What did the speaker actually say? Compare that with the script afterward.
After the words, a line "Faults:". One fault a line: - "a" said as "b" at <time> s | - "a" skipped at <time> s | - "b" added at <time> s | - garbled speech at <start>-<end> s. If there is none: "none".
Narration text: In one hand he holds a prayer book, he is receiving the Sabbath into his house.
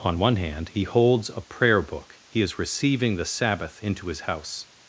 On one hand he holds a prayer book, he is receiving the Sabbath into his house.
Faults:
- "In" said as "On" at 0.0 s